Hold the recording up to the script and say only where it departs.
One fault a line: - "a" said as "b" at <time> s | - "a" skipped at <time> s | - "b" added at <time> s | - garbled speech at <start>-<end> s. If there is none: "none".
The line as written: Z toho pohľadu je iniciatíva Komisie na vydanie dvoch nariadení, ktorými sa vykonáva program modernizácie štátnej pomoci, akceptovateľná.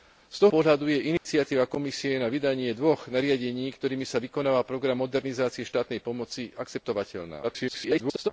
- "toho" skipped at 0.5 s
- garbled speech at 7.4-8.3 s